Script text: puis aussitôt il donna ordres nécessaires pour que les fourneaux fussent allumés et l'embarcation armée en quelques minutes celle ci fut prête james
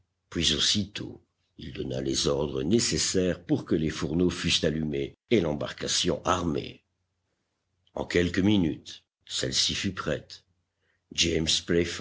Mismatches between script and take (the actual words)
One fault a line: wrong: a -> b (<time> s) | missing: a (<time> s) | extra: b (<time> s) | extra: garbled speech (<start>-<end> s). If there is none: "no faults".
extra: les (2.0 s)